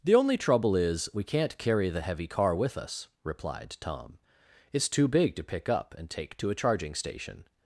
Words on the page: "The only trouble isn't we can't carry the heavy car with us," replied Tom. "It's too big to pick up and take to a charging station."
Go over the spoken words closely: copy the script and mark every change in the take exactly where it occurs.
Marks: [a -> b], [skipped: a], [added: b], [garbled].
"The only trouble [isn't -> is] we can't carry the heavy car with us," replied Tom. "It's too big to pick up and take to a charging station."